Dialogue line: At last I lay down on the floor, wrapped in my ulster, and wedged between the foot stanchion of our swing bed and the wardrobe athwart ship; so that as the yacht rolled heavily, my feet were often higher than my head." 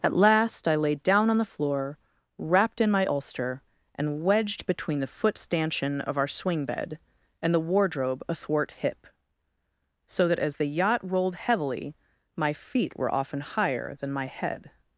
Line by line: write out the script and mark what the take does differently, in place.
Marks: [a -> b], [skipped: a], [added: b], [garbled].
At last I lay down on the floor, wrapped in my ulster, and wedged between the foot stanchion of our swing bed and the wardrobe athwart [ship; -> hip] so that as the yacht rolled heavily, my feet were often higher than my head."